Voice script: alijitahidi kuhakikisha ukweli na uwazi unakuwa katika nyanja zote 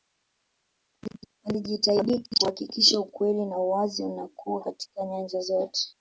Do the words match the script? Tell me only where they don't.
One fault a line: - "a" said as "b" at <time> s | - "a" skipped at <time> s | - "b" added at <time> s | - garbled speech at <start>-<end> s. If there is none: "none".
none